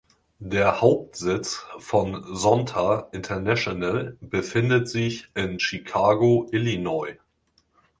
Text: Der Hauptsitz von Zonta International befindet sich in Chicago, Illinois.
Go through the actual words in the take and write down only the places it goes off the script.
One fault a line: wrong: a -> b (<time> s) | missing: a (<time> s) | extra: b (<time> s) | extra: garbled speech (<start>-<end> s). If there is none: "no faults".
no faults